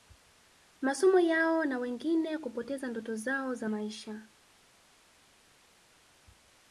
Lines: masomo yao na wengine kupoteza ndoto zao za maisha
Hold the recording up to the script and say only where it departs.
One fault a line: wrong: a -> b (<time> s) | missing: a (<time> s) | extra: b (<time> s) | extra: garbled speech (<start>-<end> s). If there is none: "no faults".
no faults